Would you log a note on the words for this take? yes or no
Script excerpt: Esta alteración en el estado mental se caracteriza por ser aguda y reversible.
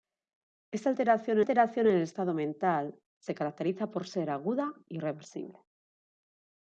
yes